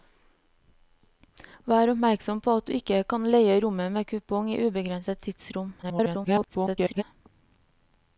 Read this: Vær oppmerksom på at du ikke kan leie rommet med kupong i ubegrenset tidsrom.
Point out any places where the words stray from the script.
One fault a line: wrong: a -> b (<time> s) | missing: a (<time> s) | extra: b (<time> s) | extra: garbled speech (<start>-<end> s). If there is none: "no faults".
extra: garbled speech (5.8-7.0 s)